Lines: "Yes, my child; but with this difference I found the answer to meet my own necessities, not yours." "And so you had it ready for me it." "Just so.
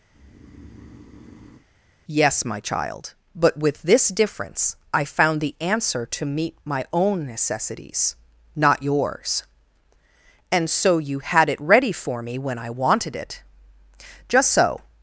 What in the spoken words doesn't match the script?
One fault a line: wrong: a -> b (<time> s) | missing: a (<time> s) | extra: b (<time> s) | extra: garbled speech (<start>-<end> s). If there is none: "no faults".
extra: when I wanted (12.4 s)